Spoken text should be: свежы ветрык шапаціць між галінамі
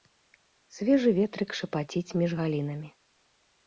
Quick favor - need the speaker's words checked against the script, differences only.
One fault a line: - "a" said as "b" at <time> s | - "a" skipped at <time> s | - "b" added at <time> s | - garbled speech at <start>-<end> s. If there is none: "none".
none